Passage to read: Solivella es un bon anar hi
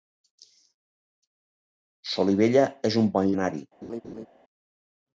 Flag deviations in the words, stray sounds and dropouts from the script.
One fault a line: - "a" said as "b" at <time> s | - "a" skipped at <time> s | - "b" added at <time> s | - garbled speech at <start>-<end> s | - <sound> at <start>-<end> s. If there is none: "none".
- laugh at 3.8-4.3 s